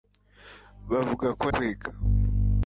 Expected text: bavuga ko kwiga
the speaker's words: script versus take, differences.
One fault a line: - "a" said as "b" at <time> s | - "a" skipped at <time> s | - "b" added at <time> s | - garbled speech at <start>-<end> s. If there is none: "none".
none